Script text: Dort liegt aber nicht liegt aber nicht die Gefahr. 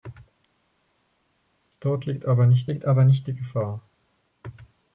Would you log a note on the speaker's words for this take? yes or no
no